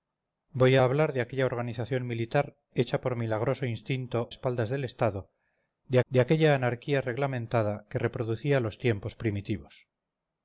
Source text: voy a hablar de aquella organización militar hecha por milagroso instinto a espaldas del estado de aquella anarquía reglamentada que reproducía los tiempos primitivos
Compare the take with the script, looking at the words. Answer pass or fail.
fail